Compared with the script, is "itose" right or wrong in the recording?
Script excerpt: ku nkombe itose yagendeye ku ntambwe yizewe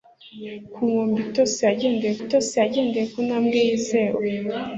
right